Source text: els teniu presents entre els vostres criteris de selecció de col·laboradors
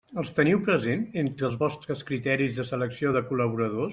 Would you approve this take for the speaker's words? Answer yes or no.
yes